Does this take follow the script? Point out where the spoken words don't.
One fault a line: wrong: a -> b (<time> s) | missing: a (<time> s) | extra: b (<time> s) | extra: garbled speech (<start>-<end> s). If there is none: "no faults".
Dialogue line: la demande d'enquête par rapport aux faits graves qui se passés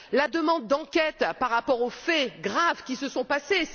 extra: sont (3.1 s)